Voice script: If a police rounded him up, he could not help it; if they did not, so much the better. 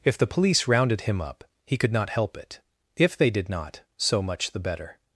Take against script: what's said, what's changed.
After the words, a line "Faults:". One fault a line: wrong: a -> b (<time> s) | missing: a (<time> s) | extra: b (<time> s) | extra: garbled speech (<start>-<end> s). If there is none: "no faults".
If the police rounded him up, he could not help it; if they did not, so much the better.
Faults:
wrong: a -> the (0.2 s)